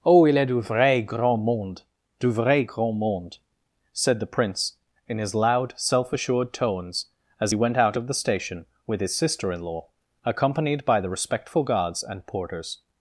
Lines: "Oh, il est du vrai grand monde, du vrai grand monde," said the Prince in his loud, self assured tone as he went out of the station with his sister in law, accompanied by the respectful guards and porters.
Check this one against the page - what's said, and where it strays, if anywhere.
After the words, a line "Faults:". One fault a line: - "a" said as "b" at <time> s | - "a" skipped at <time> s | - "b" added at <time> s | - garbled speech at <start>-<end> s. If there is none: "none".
"Oh, il est du vrai grand monde, du vrai grand monde," said the Prince in his loud, self assured tones as he went out of the station with his sister in law, accompanied by the respectful guards and porters.
Faults:
- "tone" said as "tones" at 6.5 s